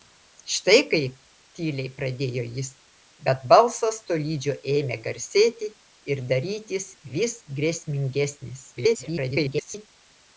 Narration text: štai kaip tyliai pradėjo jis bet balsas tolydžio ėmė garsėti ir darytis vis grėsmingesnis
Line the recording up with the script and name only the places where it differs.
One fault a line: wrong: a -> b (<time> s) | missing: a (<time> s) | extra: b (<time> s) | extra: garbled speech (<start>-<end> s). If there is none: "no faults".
extra: garbled speech (8.8-9.9 s)